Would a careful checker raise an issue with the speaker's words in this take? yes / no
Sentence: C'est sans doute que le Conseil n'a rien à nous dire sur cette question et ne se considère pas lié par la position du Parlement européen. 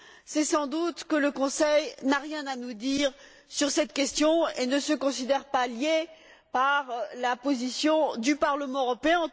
no